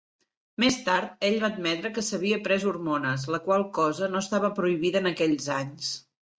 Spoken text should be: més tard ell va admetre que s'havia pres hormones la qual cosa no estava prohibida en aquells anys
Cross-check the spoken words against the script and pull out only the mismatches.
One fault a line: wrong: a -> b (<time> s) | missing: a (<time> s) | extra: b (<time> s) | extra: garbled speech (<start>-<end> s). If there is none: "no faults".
no faults